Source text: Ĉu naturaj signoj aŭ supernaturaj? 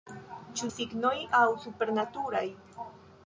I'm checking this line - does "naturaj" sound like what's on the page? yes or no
no